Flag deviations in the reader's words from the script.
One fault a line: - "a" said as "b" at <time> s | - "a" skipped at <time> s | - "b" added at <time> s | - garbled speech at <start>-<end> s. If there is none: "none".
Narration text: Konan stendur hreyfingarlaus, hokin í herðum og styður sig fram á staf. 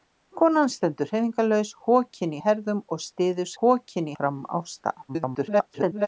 - "sig" said as "hokin" at 3.6 s
- garbled speech at 5.1-6.1 s